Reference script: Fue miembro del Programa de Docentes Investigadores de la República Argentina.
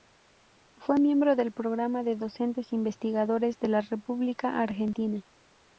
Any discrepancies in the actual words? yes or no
no